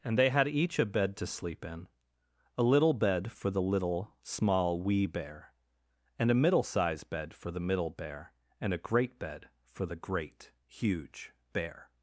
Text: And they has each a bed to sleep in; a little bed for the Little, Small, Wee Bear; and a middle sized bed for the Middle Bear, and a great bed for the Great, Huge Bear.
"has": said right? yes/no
no